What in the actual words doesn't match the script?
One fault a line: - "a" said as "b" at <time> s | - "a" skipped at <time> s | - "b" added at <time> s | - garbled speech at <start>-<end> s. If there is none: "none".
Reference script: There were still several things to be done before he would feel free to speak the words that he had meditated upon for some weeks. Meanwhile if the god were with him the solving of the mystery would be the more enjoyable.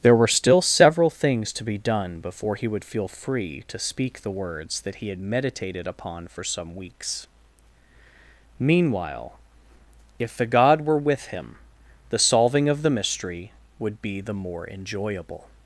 none